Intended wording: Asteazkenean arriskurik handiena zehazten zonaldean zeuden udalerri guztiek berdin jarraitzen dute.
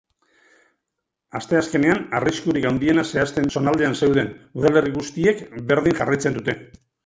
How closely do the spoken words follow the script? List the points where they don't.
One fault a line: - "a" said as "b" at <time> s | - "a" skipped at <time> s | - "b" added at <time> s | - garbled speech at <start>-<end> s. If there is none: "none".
none